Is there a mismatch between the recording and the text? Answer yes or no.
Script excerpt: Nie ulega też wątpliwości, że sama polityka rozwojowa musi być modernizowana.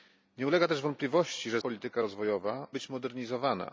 yes